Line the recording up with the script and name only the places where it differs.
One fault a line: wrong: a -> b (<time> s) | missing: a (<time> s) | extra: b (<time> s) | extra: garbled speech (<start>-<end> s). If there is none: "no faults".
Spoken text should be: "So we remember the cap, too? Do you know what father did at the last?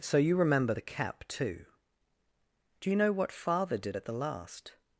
wrong: we -> you (0.2 s)